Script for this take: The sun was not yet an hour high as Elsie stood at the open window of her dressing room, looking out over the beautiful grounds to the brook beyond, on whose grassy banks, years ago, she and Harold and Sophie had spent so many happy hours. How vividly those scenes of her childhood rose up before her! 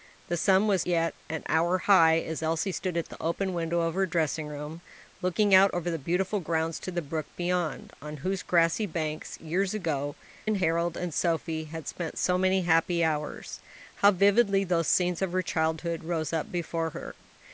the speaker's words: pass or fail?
fail